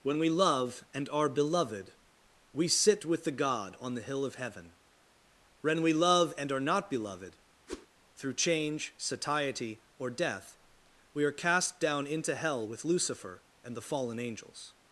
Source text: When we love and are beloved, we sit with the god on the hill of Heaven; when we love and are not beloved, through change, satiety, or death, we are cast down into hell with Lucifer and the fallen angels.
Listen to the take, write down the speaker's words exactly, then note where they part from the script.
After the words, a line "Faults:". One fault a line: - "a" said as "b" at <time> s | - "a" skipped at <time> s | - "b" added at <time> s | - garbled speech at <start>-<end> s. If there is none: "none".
When we love and are beloved, we sit with the god on the hill of Heaven; when we love and are not beloved, through change, satiety, or death, we are cast down into hell with Lucifer and the fallen angels.
Faults:
none